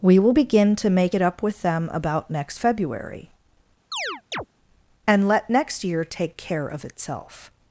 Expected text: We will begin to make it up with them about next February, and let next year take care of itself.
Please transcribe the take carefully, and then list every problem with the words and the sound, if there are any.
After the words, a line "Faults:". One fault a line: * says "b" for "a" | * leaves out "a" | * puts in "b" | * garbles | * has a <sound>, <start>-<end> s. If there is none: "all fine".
We will begin to make it up with them about next February, and let next year take care of itself.
Faults:
* has a chirp, 3.9-4.5 s